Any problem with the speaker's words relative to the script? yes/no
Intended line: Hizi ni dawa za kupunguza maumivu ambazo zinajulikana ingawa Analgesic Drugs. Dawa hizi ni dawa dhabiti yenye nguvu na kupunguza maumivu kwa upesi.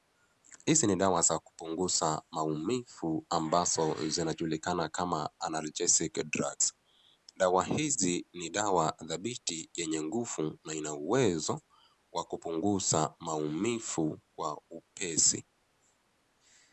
yes